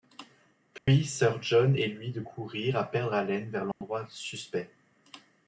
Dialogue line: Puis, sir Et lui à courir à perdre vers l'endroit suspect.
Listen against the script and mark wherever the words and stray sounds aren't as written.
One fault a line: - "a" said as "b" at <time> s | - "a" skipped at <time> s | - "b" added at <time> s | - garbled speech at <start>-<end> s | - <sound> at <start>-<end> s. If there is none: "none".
- dropout at 0.8-0.9 s
- "John" added at 1.4 s
- "à" said as "de" at 2.1 s
- "haleine" added at 3.1 s
- dropout at 3.7-3.8 s